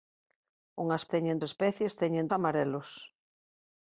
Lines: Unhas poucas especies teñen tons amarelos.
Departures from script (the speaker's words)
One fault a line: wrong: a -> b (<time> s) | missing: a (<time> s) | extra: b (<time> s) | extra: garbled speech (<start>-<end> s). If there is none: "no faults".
wrong: poucas -> teñen (1.1 s)
missing: tons (2.3 s)